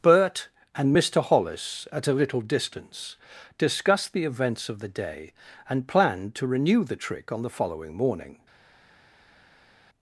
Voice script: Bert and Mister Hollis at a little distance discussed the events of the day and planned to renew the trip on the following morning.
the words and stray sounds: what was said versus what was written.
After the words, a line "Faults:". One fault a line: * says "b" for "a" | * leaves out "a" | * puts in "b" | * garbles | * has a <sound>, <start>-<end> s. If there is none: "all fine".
Bert and Mister Hollis at a little distance discussed the events of the day and planned to renew the trick on the following morning.
Faults:
* says "trick" for "trip"